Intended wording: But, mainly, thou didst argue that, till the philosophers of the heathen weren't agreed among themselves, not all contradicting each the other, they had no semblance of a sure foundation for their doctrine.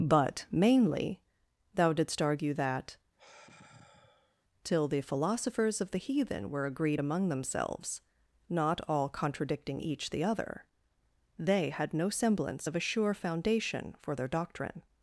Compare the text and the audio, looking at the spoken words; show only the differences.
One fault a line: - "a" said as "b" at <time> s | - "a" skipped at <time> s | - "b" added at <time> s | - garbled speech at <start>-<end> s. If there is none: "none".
- "weren't" said as "were" at 6.5 s